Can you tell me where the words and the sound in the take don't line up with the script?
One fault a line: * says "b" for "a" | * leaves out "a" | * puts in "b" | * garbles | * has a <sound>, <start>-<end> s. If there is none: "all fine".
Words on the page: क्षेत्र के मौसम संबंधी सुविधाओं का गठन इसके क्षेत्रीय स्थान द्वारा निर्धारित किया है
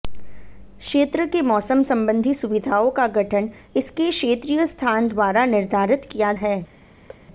* has a thud, 7.1-7.3 s